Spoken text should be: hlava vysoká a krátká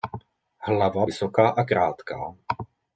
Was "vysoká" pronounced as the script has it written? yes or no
yes